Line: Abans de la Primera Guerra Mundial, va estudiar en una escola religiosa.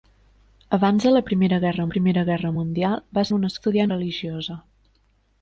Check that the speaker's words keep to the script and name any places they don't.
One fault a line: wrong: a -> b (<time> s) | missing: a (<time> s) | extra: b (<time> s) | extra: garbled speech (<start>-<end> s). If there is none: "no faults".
extra: Primera Guerra (1.9 s)
missing: estudiar (3.3 s)
wrong: escola -> estudiar (3.6 s)